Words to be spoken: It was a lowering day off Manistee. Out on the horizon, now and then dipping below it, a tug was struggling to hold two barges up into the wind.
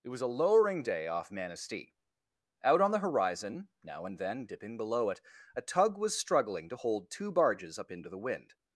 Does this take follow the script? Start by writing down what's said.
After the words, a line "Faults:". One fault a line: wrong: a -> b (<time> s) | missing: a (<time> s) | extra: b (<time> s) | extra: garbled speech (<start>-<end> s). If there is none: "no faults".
It was a lowering day off Manistee. Out on the horizon, now and then dipping below it, a tug was struggling to hold two barges up into the wind.
Faults:
no faults